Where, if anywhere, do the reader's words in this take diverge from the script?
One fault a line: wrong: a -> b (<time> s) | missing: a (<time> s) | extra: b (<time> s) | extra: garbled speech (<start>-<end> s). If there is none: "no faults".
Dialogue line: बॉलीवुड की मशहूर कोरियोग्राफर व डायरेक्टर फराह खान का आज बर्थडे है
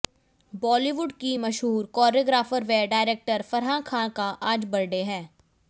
no faults